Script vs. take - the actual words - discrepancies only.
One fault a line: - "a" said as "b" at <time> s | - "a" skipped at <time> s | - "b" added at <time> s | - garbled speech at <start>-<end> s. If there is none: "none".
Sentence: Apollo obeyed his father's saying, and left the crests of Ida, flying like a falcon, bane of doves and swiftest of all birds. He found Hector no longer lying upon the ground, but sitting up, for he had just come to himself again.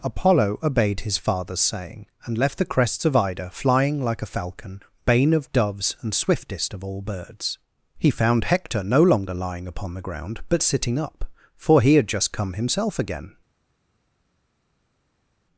- "to" skipped at 12.5 s